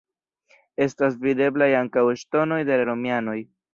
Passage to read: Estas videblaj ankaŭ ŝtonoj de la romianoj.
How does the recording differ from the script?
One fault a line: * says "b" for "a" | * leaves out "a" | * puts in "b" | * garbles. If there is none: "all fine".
all fine